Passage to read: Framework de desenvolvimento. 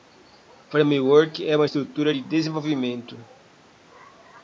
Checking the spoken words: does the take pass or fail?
fail